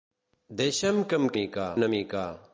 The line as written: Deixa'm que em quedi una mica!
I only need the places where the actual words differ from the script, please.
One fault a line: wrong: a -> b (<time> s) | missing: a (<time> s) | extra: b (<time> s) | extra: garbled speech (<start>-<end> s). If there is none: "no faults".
wrong: quedi -> mica (1.4 s)